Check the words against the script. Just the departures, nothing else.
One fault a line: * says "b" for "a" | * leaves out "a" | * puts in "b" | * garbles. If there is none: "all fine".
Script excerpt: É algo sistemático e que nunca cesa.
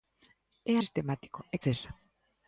* leaves out "algo"
* leaves out "que nunca"